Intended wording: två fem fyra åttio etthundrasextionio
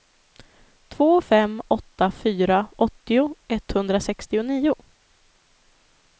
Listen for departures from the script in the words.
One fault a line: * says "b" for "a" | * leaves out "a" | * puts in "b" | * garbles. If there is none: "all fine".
* puts in "åtta"